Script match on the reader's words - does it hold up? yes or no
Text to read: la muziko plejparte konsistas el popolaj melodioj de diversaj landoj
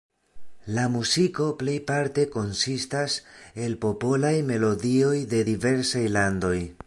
yes